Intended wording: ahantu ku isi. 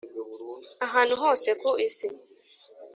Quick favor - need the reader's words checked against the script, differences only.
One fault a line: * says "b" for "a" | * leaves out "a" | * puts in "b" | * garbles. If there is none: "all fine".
* puts in "hose"